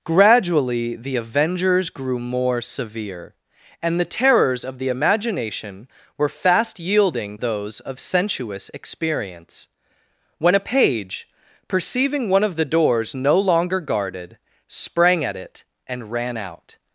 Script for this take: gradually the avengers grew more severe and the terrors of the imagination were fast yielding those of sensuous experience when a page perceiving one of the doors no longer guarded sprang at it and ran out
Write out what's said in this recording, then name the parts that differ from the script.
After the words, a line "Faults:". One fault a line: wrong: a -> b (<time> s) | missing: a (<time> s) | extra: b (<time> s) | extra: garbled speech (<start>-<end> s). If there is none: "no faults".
gradually the avengers grew more severe and the terrors of the imagination were fast yielding those of sensuous experience when a page perceiving one of the doors no longer guarded sprang at it and ran out
Faults:
no faults